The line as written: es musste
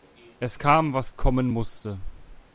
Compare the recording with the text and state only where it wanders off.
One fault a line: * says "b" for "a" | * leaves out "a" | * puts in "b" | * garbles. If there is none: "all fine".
* puts in "kam was kommen"